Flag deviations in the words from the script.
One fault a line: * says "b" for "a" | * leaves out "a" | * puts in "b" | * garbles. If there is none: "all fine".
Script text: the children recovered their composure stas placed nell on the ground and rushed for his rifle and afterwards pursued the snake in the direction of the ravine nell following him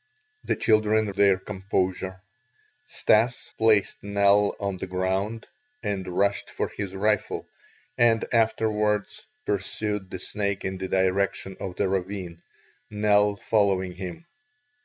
* leaves out "recovered"